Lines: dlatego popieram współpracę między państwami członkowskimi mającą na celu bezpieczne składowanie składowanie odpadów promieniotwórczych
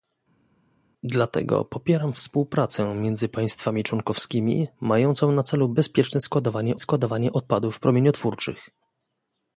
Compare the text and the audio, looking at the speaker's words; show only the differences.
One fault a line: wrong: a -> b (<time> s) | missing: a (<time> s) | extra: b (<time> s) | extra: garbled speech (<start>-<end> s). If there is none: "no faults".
no faults